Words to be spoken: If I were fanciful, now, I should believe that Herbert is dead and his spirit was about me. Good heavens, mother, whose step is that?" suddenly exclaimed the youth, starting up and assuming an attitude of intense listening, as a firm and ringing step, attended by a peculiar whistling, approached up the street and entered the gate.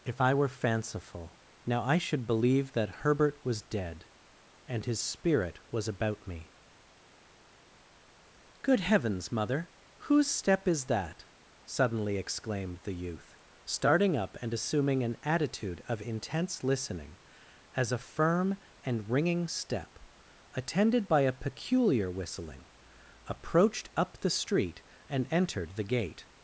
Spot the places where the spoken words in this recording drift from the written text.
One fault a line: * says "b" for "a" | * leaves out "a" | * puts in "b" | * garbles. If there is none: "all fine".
* says "was" for "is"